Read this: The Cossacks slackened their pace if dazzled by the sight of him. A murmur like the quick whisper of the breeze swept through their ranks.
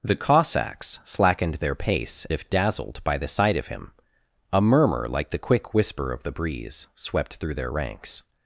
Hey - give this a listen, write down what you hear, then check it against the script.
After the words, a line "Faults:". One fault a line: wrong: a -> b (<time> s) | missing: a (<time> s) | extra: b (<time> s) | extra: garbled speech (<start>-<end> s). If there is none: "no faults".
The Cossacks slackened their pace if dazzled by the sight of him. A murmur like the quick whisper of the breeze swept through their ranks.
Faults:
no faults